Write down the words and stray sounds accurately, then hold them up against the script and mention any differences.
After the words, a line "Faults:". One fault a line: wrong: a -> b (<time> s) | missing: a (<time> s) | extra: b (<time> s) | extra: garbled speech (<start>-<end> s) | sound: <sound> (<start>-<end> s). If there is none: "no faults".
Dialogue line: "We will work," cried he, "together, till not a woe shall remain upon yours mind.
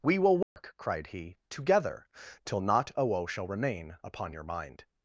"We will work," cried he, "together, till not a woe shall remain upon your mind.
Faults:
sound: dropout (0.4-0.6 s)
wrong: yours -> your (4.3 s)